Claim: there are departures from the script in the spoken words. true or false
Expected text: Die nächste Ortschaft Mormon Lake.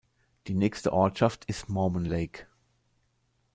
true